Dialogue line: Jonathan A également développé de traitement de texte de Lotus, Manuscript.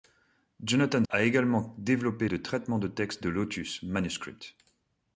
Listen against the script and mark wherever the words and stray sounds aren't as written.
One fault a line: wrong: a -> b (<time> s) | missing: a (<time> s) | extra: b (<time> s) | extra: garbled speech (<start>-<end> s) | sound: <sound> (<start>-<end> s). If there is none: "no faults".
no faults